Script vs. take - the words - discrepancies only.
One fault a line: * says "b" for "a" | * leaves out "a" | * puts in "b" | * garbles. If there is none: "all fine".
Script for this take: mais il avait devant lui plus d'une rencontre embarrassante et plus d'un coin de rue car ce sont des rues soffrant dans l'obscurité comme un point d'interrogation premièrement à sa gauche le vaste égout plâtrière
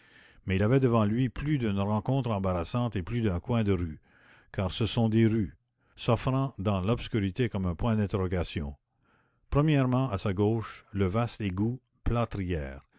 all fine